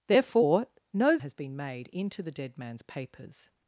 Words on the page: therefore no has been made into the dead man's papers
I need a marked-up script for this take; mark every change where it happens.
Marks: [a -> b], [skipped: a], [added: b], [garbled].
therefore no has been made into the dead man's papers